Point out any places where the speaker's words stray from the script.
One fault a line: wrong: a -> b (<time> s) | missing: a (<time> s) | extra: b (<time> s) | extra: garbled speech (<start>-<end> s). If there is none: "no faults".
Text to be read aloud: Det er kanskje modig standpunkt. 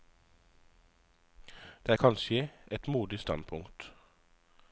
extra: et (2.7 s)